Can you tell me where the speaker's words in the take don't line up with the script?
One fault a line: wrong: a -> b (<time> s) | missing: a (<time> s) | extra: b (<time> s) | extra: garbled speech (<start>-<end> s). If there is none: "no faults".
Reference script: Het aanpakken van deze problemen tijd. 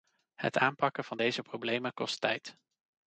extra: kost (1.9 s)